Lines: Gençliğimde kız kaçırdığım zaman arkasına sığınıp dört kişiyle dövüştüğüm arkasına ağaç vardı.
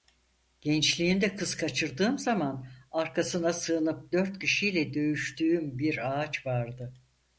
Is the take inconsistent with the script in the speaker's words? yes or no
yes